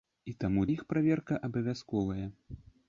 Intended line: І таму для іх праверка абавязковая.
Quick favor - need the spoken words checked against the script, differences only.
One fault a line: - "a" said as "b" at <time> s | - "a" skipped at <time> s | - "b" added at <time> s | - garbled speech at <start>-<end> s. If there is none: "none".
- "для" skipped at 0.6 s